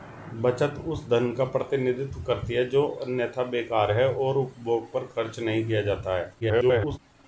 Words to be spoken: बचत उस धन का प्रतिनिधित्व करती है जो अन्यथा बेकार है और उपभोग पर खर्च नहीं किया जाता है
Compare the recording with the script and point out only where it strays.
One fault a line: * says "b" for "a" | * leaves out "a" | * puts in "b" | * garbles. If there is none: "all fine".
* garbles